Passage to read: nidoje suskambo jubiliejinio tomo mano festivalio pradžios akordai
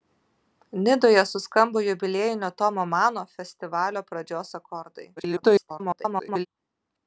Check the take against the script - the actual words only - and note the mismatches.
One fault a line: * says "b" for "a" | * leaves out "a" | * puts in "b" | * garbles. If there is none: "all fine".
* garbles